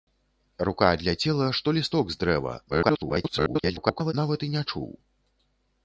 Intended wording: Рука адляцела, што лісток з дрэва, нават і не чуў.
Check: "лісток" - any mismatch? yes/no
no